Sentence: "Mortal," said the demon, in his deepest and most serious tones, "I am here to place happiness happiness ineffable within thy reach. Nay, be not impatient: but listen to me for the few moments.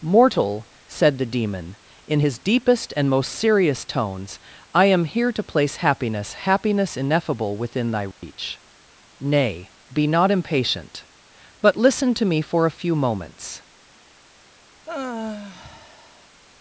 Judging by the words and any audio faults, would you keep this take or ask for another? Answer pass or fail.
fail